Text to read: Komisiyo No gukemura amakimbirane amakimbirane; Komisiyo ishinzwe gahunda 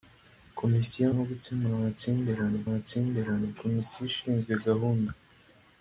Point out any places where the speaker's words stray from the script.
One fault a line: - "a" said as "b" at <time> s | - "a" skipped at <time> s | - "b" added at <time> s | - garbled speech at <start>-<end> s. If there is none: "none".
none